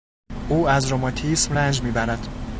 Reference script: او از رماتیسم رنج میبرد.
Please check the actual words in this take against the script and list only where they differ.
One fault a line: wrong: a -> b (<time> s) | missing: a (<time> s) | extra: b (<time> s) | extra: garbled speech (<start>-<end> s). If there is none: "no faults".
no faults